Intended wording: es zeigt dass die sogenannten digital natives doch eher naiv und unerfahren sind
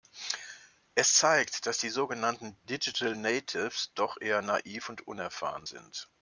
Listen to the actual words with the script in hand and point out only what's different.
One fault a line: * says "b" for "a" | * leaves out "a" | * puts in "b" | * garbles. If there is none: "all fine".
all fine